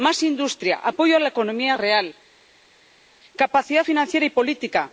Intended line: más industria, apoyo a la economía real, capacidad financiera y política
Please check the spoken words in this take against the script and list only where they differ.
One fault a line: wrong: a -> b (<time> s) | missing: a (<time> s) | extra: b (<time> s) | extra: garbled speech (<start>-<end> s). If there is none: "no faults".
no faults